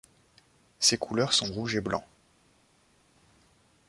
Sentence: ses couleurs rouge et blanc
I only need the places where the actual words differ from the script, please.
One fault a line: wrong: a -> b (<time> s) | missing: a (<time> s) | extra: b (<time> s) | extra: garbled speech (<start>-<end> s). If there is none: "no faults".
extra: sont (1.3 s)